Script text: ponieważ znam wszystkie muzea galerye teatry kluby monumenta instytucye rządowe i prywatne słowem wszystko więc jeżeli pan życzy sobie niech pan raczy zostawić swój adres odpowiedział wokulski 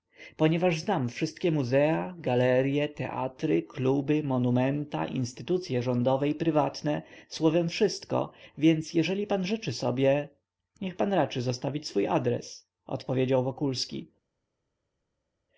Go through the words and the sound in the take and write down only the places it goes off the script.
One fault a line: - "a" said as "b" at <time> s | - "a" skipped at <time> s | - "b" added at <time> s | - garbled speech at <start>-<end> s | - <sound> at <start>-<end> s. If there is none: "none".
none